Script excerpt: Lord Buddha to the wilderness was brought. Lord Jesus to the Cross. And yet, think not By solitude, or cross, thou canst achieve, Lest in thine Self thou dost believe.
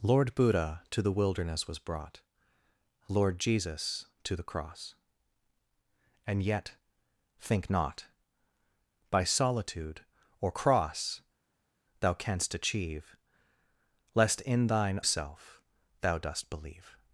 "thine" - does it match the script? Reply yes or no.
yes